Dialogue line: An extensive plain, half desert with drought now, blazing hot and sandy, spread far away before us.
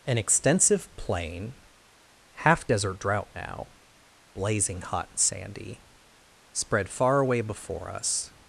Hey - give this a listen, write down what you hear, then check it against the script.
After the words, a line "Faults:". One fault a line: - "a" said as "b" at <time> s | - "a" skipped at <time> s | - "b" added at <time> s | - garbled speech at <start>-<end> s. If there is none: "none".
An extensive plain, half desert drought now, blazing hot and sandy, spread far away before us.
Faults:
- "with" skipped at 3.0 s